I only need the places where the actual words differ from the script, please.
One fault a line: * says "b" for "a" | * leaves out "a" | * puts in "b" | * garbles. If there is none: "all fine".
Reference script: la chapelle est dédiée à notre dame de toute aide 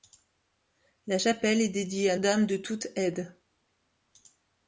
* leaves out "notre"